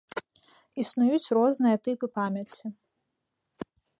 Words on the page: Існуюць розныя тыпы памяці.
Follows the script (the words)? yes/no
yes